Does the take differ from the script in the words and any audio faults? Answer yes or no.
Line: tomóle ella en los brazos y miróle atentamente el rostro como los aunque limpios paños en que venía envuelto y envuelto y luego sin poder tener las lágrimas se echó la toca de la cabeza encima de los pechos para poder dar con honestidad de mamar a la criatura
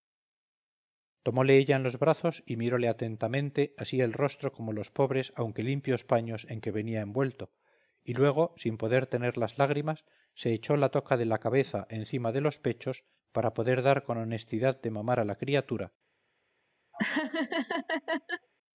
yes